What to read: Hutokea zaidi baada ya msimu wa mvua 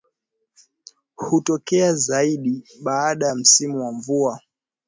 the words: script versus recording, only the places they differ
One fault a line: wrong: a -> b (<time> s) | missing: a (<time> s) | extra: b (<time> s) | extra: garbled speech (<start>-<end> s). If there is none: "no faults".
no faults